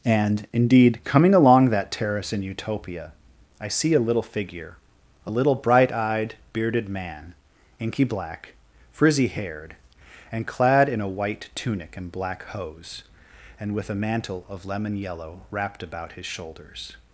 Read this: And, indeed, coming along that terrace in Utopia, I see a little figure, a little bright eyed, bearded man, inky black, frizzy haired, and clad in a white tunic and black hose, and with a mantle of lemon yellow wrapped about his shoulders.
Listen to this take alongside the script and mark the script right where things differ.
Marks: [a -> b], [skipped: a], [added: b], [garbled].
And, indeed, coming along that terrace in Utopia, I see a little figure, a little bright eyed, bearded man, inky black, frizzy haired, and clad in a white tunic and black hose, and with a mantle of lemon yellow wrapped about his shoulders.